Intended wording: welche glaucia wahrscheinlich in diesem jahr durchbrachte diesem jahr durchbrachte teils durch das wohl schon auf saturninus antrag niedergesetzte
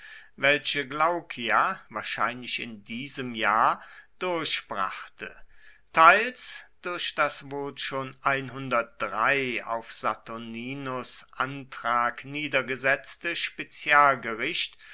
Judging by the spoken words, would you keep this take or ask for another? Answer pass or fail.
fail